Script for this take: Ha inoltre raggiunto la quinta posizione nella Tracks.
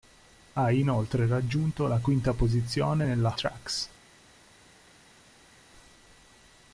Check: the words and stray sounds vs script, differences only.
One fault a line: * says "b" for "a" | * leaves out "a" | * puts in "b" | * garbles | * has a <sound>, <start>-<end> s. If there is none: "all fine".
all fine